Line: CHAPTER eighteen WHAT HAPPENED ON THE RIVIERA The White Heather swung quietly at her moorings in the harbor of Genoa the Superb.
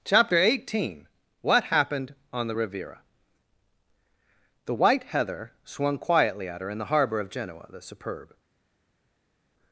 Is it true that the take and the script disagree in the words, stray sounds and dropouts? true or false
true